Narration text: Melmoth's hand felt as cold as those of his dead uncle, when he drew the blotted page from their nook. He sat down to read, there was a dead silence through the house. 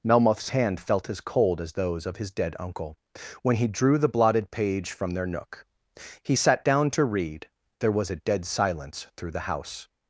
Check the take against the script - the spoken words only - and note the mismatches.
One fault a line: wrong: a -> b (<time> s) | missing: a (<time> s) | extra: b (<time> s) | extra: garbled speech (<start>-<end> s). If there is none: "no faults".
no faults